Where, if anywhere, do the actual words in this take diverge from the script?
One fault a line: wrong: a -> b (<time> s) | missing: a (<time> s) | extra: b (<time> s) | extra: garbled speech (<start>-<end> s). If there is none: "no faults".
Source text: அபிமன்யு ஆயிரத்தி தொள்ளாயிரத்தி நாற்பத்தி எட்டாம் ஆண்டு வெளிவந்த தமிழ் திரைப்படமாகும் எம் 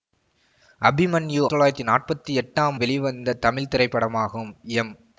missing: ஆயிரத்தி (1.4 s)
missing: ஆண்டு (2.8 s)